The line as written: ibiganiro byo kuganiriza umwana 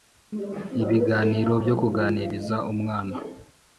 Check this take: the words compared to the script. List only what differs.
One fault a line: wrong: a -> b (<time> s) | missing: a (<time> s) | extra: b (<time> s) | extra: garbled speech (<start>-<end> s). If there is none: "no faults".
no faults